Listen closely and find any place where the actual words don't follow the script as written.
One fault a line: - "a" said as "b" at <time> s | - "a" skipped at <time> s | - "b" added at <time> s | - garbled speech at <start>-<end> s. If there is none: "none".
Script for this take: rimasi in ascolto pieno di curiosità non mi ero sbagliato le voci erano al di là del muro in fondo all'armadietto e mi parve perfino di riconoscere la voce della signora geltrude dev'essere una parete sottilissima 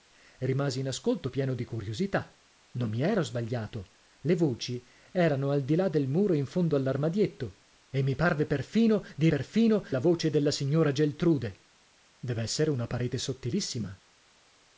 - "riconoscere" said as "perfino" at 9.3 s